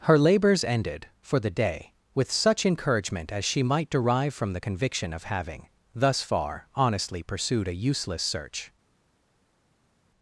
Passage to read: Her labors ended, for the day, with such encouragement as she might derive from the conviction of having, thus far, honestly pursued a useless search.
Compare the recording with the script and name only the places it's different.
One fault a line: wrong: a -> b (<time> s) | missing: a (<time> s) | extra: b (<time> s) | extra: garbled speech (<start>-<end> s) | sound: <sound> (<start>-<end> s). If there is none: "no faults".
no faults